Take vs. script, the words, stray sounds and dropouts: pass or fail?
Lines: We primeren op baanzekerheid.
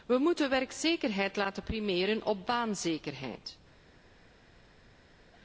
fail